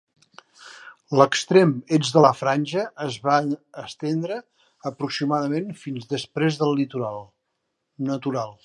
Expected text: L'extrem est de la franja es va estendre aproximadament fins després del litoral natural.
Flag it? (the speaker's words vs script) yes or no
no